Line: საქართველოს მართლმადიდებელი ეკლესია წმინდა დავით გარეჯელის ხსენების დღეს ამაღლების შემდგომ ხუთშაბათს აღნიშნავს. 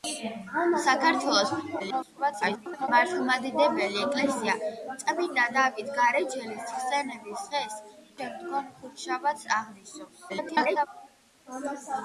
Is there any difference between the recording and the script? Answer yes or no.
yes